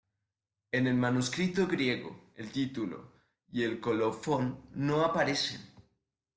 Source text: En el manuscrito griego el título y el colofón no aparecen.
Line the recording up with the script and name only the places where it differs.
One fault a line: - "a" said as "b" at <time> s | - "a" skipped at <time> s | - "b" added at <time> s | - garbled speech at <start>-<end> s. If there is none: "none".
none